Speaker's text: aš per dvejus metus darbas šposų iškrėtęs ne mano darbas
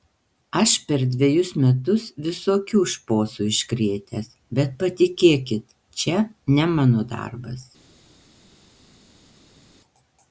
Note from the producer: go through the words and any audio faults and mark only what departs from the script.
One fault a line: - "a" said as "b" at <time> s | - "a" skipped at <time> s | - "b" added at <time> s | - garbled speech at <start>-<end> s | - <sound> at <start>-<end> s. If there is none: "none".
- "darbas" said as "visokių" at 2.3 s
- "bet patikėkit čia" added at 4.6 s